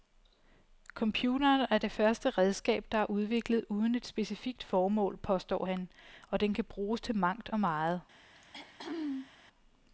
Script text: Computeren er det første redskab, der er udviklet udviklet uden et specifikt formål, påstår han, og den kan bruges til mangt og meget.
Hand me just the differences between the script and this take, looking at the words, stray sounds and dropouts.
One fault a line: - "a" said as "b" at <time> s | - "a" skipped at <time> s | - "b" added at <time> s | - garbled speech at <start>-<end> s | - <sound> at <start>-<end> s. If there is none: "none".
- "udviklet" skipped at 3.6 s
- throat clearing at 8.3-9.3 s